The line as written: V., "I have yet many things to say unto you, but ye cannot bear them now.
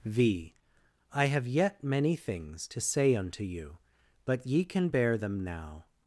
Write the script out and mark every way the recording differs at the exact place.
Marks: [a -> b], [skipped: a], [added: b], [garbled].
V., "I have yet many things to say unto you, but ye [cannot -> can] bear them now.